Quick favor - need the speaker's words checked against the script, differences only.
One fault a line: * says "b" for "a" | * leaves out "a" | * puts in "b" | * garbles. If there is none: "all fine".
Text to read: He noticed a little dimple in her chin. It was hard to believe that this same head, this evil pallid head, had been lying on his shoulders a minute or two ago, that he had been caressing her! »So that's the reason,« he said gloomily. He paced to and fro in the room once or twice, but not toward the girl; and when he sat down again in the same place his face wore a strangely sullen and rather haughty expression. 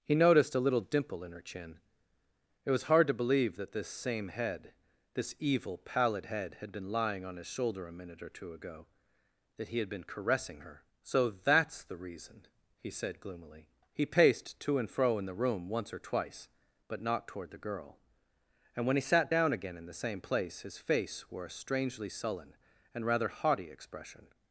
* says "shoulder" for "shoulders"